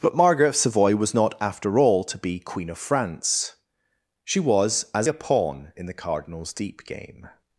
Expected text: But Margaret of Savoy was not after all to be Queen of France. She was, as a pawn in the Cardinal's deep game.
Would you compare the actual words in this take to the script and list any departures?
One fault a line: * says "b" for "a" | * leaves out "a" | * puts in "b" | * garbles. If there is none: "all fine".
all fine